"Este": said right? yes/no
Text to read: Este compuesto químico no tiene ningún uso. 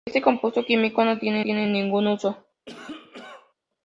yes